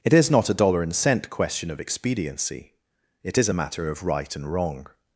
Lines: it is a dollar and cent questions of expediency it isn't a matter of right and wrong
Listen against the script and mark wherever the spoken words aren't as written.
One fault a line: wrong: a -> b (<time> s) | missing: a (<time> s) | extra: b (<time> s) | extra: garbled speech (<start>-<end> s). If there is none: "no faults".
extra: not (0.3 s)
wrong: questions -> question (1.3 s)
wrong: isn't -> is (3.4 s)